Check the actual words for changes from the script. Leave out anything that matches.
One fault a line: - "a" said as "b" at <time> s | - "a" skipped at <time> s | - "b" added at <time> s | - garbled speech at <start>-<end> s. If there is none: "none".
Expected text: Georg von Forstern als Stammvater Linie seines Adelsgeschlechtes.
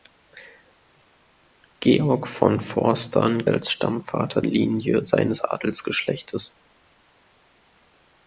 none